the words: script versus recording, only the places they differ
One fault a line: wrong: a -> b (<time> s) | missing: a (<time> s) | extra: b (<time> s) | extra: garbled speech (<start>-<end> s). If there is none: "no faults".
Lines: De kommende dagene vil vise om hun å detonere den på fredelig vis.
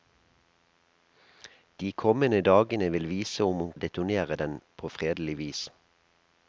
no faults